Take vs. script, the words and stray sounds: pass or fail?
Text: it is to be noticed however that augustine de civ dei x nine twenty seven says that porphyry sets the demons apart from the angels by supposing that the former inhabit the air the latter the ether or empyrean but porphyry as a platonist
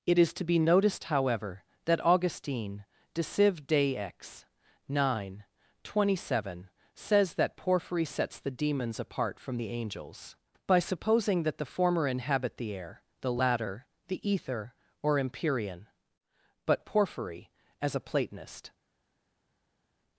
pass